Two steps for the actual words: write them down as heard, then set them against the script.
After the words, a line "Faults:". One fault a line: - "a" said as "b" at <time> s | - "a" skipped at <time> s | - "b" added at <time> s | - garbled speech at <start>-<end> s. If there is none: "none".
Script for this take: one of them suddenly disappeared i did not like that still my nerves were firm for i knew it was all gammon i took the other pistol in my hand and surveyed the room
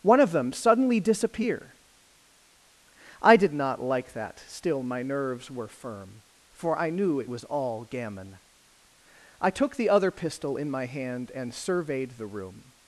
one of them suddenly disappear i did not like that still my nerves were firm for i knew it was all gammon i took the other pistol in my hand and surveyed the room
Faults:
- "disappeared" said as "disappear" at 1.0 s